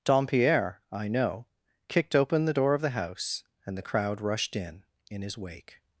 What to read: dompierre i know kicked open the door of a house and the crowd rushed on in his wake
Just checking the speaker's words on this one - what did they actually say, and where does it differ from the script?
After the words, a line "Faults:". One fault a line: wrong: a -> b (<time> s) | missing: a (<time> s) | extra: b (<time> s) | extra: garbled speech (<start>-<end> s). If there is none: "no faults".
dompierre i know kicked open the door of the house and the crowd rushed in in his wake
Faults:
wrong: a -> the (2.8 s)
wrong: on -> in (4.5 s)